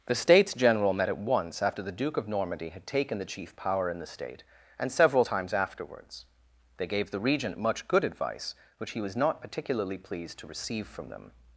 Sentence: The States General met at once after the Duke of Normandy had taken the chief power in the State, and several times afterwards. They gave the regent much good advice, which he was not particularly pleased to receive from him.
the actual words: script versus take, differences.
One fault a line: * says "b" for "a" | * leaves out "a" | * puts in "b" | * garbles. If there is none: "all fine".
* says "them" for "him"